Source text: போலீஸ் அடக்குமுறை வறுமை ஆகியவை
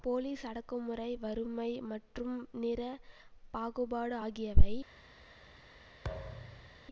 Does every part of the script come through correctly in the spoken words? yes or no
no